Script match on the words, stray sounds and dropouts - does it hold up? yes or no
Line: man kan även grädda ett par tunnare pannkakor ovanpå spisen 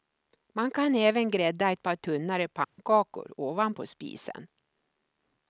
no